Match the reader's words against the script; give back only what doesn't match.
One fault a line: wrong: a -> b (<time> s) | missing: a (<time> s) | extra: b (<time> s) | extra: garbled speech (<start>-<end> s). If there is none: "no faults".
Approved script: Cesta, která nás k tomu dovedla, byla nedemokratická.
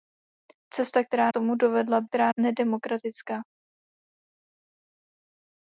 missing: nás (1.3 s)
wrong: byla -> která (2.0 s)